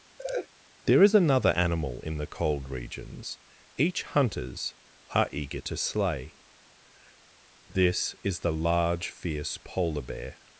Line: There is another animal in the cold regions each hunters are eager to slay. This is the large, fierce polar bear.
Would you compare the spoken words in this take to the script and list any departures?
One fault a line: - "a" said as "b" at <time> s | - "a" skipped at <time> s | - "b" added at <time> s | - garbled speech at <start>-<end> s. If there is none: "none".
none